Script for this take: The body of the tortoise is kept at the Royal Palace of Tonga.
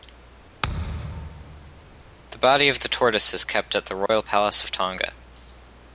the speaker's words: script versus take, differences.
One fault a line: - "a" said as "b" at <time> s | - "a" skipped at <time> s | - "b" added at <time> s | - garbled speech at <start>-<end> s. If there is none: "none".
none